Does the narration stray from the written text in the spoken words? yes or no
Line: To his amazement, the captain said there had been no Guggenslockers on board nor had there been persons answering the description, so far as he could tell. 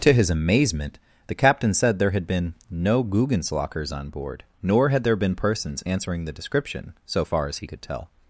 no